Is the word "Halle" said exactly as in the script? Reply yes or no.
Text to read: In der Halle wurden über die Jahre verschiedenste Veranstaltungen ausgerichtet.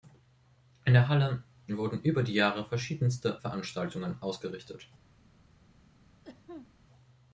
yes